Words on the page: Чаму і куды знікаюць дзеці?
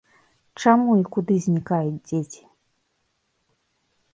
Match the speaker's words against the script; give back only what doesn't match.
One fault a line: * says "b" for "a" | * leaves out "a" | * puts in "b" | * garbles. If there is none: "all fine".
all fine